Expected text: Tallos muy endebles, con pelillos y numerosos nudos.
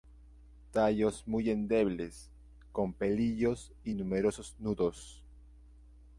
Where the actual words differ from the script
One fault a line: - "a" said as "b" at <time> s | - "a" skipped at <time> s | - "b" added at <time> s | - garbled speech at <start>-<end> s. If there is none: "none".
none